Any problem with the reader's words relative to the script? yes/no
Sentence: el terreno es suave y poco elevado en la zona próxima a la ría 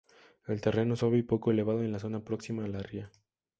no